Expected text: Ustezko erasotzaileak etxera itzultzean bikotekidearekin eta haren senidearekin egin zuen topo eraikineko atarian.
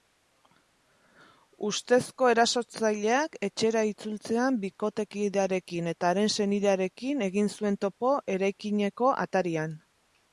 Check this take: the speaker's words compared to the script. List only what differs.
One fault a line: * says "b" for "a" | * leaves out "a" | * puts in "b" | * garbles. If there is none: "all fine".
all fine